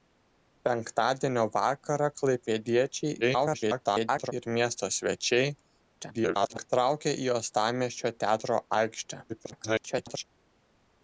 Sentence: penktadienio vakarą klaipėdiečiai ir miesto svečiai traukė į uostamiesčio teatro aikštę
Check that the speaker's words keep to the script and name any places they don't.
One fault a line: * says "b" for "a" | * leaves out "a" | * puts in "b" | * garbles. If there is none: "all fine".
* garbles
* garbles
* garbles